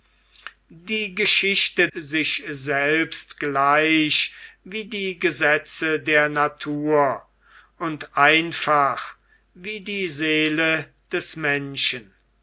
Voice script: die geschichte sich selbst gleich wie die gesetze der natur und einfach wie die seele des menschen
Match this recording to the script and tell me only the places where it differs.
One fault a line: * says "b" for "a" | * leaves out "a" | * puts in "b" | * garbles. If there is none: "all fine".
all fine